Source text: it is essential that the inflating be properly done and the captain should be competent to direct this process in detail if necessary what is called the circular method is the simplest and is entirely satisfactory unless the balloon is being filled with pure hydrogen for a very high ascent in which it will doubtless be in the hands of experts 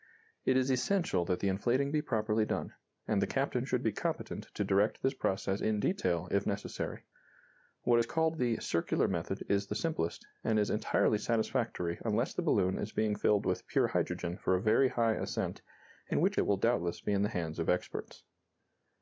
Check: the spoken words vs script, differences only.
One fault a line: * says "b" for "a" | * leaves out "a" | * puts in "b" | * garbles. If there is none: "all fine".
all fine